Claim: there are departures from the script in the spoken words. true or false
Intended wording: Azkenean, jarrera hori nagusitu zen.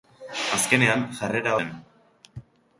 true